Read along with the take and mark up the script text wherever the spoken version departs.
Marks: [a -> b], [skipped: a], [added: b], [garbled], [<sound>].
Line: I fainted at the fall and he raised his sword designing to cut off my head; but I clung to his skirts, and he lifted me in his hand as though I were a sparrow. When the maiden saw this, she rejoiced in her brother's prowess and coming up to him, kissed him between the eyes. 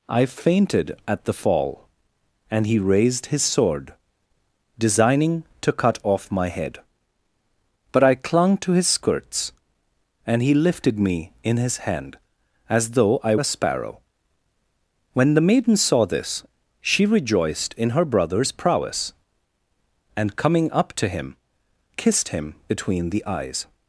I fainted at the fall and he raised his sword designing to cut off my head; but I clung to his skirts, and he lifted me in his hand as though I [skipped: were] a sparrow. When the maiden saw this, she rejoiced in her brother's prowess and coming up to him, kissed him between the eyes.